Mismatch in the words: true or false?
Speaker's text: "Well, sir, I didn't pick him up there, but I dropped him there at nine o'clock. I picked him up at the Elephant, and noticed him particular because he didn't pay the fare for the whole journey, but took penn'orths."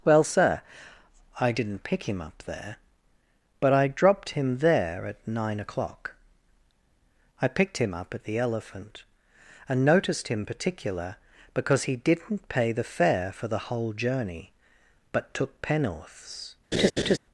false